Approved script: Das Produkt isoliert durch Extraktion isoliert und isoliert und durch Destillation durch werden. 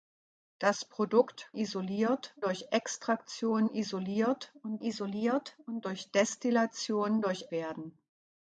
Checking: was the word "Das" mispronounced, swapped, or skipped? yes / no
no